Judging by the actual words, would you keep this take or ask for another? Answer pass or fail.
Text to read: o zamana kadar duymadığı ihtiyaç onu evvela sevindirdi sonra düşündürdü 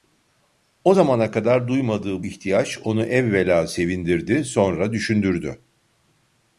pass